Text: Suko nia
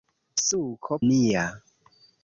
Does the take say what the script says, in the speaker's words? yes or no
yes